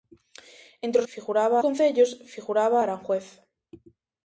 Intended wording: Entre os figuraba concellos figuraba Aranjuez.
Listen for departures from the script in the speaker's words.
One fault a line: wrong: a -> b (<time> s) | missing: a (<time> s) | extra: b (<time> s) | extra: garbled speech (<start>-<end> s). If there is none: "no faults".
no faults